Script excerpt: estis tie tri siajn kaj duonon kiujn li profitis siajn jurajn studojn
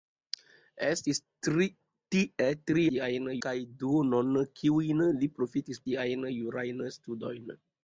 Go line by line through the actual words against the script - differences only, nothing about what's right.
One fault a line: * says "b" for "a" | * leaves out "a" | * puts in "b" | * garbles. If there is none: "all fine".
all fine